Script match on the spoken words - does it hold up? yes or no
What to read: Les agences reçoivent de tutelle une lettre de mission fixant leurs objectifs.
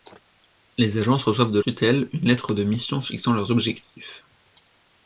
yes